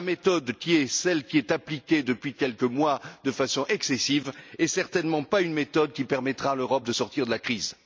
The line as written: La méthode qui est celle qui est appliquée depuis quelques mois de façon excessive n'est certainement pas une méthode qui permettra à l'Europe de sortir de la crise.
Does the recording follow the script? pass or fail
pass